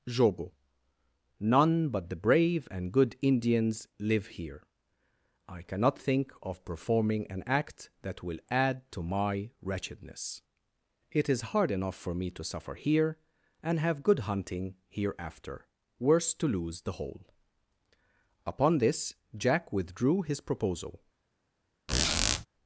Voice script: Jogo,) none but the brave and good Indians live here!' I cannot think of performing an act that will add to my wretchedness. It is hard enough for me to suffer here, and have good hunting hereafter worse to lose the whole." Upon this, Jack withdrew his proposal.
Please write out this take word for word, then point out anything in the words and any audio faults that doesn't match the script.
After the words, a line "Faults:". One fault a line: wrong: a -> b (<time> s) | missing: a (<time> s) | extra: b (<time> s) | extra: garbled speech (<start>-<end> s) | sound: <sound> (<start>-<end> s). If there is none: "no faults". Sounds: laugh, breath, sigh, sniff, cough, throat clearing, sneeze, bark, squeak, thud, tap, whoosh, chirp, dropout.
Jogo,) none but the brave and good Indians live here!' I cannot think of performing an act that will add to my wretchedness. It is hard enough for me to suffer here, and have good hunting hereafter worse to lose the whole." Upon this, Jack withdrew his proposal.
Faults:
sound: squeak (21.9-22.5 s)